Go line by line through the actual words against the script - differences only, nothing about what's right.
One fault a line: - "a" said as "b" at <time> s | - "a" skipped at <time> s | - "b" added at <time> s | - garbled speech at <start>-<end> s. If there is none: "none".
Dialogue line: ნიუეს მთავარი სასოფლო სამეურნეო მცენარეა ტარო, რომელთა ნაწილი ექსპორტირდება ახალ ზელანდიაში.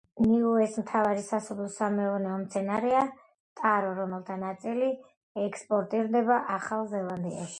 none